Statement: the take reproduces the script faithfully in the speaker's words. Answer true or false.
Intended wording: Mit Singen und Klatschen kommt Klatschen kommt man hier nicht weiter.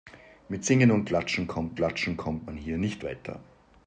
true